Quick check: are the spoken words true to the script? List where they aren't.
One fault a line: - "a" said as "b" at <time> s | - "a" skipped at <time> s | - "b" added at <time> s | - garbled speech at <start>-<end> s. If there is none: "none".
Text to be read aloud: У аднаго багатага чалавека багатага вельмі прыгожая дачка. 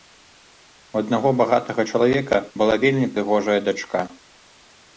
- "багатага" said as "была" at 2.6 s